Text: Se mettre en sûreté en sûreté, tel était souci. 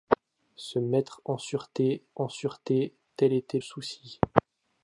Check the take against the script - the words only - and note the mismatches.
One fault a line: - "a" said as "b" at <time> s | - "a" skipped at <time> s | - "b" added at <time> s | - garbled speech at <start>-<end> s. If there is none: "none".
none